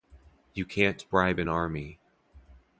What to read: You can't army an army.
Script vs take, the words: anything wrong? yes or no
yes